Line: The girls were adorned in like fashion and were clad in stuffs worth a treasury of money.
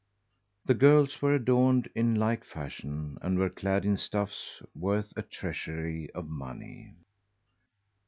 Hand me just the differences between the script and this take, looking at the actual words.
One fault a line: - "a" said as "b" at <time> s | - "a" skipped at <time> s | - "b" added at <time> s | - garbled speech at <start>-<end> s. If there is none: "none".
none